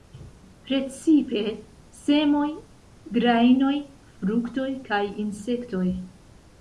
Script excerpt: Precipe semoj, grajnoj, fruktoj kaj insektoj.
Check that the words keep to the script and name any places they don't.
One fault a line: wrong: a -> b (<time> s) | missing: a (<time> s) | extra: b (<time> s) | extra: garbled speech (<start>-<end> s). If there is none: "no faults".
no faults